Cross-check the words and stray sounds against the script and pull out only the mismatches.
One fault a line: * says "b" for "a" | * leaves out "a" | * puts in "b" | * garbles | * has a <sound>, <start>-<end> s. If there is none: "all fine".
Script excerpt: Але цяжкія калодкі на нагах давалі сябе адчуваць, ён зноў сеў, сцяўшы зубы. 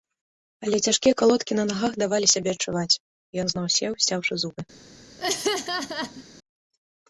* has a laugh, 5.2-6.2 s